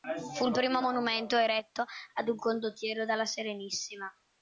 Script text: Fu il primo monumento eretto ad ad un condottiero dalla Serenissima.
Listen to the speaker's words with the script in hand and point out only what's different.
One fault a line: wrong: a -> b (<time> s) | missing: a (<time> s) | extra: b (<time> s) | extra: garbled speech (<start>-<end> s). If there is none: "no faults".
missing: ad (2.3 s)